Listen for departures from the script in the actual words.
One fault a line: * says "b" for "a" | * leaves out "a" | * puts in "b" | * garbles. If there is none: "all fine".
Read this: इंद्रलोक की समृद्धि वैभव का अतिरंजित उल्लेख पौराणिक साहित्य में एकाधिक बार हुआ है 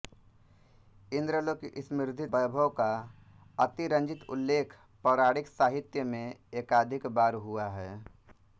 all fine